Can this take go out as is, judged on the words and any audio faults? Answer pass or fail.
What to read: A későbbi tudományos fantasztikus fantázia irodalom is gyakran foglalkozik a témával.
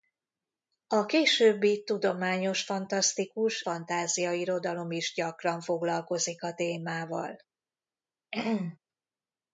fail